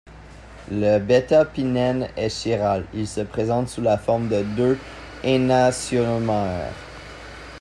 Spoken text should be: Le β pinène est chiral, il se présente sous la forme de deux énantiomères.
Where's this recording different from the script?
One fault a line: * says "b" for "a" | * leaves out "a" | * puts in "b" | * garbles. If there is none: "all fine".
all fine